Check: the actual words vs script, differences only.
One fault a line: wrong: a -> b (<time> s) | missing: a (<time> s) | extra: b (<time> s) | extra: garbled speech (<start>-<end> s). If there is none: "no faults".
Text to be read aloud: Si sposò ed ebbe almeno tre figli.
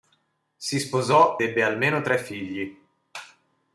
missing: ed (1.4 s)